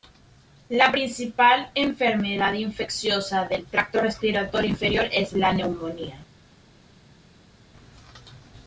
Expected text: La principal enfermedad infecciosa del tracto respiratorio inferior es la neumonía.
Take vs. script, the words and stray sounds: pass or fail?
pass